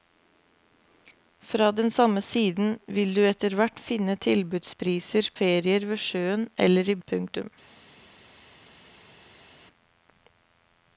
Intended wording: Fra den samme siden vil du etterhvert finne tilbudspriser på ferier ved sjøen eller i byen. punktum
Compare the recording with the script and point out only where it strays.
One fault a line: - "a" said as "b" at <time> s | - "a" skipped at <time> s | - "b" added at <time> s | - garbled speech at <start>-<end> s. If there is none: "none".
- "på" skipped at 5.3 s
- "byen" skipped at 7.0 s